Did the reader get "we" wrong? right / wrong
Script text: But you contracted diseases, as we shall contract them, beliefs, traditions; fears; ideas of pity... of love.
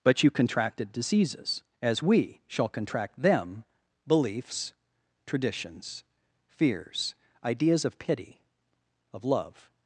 right